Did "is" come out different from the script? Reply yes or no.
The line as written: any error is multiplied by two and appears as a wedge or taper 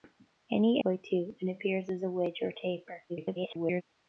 yes